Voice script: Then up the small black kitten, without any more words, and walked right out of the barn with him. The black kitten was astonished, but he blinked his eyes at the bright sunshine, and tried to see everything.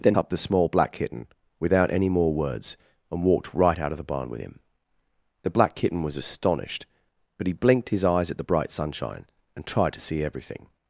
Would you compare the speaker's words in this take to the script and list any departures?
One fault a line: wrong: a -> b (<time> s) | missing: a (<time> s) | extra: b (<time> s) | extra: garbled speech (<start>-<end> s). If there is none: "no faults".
no faults